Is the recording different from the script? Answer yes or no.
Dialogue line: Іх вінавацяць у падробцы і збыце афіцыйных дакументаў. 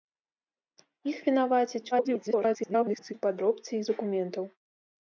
yes